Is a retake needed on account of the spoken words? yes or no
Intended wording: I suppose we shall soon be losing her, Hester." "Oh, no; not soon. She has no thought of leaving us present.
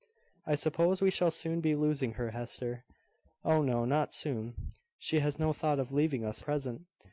no